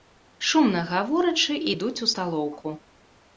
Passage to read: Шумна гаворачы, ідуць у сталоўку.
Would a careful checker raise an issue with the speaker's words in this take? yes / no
no